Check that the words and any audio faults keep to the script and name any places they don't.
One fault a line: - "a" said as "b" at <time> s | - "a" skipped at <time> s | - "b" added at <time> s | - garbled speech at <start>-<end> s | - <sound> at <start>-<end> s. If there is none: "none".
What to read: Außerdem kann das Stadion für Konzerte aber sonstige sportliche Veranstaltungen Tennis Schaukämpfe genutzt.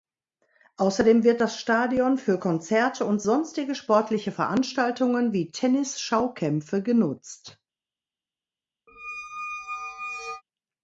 - "kann" said as "wird" at 1.2 s
- "aber" said as "und" at 3.0 s
- "wie" added at 5.3 s
- squeak at 8.9-10.4 s